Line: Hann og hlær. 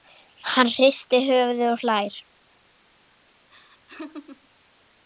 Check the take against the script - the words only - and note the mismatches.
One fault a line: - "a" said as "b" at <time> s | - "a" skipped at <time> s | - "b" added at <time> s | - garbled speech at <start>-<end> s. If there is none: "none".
- "hristir höfuðið" added at 0.8 s